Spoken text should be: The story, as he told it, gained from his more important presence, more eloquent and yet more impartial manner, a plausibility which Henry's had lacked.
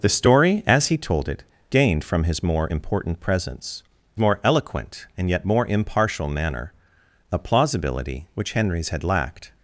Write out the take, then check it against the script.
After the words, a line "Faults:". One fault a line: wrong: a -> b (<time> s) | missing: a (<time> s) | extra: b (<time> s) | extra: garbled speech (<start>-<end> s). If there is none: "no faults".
The story, as he told it, gained from his more important presence, more eloquent and yet more impartial manner, a plausibility which Henry's had lacked.
Faults:
no faults